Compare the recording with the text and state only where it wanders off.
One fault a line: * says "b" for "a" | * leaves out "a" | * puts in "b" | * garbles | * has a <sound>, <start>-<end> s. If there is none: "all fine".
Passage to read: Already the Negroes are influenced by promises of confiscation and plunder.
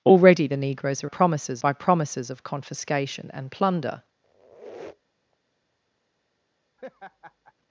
* says "promises" for "influenced"
* has a squeak, 4.2-5.4 s
* has a laugh, 6.8-7.5 s